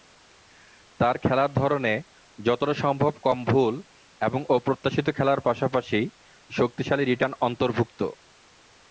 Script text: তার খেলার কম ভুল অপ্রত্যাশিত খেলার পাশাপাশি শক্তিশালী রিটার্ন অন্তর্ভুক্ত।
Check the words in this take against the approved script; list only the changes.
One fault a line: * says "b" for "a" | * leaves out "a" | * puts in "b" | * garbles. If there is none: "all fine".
* puts in "ধরনে যতটা সম্ভব"
* puts in "এবং"